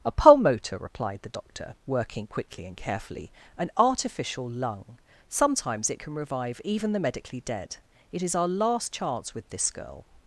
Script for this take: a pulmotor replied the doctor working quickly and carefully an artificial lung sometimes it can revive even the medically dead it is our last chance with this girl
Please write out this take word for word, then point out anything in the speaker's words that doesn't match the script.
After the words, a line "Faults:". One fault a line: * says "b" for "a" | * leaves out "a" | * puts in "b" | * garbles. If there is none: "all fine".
a pulmotor replied the doctor working quickly and carefully an artificial lung sometimes it can revive even the medically dead it is our last chance with this girl
Faults:
all fine